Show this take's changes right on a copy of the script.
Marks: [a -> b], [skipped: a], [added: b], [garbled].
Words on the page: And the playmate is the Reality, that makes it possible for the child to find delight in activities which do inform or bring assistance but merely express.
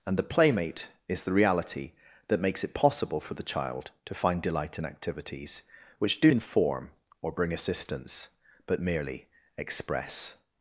And the playmate is the Reality, that makes it possible for the child to find delight in activities which do inform or bring assistance but merely express.